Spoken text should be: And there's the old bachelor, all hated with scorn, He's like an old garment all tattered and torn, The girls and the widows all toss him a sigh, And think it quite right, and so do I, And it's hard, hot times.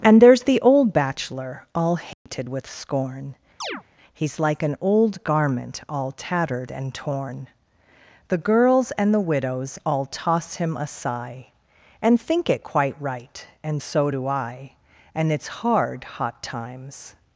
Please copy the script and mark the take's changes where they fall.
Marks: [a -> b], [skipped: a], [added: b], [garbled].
And there's the old bachelor, all hated with scorn, He's like an old garment all tattered and torn, The girls and the widows all toss him a sigh, And think it quite right, and so do I, And it's hard, hot times.